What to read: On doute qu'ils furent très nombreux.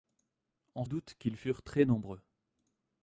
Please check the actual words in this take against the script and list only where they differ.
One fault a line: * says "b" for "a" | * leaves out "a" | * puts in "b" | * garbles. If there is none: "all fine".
all fine